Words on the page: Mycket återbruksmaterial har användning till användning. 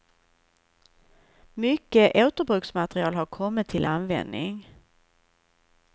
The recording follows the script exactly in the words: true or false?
false